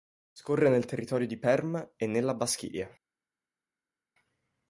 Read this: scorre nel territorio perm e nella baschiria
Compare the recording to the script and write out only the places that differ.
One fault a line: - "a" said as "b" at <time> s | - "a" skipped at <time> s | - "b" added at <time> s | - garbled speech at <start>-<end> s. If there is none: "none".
- "di" added at 1.3 s